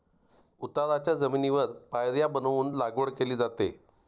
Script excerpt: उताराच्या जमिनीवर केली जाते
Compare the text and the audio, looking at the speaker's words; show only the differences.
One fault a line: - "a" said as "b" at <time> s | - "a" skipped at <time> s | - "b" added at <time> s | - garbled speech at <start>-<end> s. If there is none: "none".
- "पायऱ्या बनवून लागवड" added at 1.9 s